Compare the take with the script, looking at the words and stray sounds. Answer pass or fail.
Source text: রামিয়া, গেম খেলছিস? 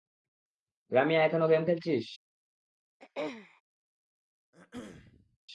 fail